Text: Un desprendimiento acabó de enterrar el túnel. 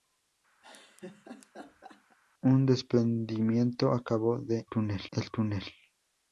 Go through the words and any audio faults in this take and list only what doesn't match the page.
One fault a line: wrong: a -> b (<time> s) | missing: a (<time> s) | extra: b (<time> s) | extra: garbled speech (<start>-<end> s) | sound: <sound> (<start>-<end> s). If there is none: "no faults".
sound: laugh (0.6-2.2 s)
wrong: enterrar -> túnel (4.7 s)